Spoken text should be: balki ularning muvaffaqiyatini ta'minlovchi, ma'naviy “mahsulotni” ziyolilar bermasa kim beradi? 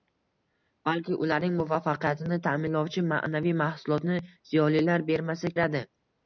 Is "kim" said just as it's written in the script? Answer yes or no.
no